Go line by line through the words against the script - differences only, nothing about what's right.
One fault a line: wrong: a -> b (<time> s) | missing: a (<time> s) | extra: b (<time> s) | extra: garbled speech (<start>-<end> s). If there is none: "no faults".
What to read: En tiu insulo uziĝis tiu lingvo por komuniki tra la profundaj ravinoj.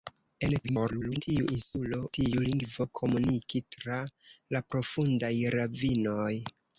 extra: garbled speech (0.6-1.2 s)
missing: uziĝis (2.0 s)
missing: por (2.9 s)